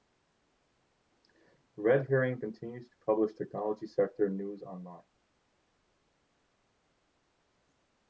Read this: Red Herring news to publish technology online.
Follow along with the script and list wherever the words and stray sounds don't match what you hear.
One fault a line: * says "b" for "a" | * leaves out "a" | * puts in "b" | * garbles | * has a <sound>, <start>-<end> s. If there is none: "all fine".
* says "continues" for "news"
* puts in "sector news"